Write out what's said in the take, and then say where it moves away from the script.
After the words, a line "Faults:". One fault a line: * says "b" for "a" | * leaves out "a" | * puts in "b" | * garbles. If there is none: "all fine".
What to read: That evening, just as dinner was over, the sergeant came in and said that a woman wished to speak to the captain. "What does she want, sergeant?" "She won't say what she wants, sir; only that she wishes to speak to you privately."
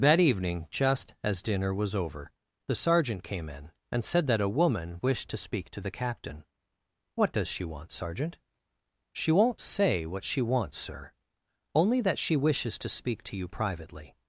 That evening, just as dinner was over, the sergeant came in and said that a woman wished to speak to the captain. "What does she want, sergeant?" "She won't say what she wants, sir; only that she wishes to speak to you privately."
Faults:
all fine